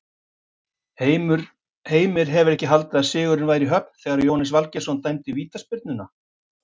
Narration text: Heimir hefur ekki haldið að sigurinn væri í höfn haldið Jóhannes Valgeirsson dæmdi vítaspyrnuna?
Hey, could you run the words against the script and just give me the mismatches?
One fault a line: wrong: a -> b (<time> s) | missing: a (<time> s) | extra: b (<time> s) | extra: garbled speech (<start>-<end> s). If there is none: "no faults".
wrong: haldið -> þegar (4.0 s)